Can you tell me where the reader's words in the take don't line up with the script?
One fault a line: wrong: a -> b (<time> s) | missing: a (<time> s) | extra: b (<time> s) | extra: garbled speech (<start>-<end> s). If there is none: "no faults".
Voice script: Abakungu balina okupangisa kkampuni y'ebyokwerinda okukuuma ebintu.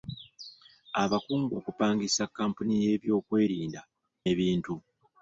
missing: balina (1.5 s)
missing: okukuuma (3.8 s)